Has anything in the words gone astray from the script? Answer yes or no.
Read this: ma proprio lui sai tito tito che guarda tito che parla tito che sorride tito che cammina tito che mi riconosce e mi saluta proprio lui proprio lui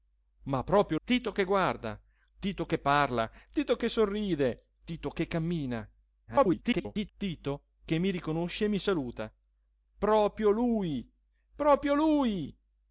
yes